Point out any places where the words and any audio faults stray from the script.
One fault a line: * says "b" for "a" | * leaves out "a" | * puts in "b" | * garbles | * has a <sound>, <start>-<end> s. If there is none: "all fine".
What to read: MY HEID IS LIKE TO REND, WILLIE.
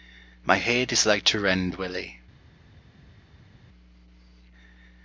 all fine